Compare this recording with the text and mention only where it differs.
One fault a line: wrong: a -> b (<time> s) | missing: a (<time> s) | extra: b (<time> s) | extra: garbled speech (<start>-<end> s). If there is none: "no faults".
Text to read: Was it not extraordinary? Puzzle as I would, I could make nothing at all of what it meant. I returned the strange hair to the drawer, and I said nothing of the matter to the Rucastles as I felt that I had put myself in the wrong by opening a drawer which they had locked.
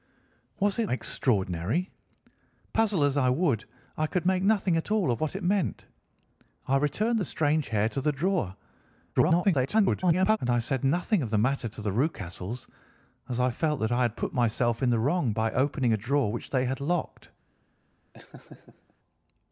missing: not (0.9 s)
extra: garbled speech (9.1-10.4 s)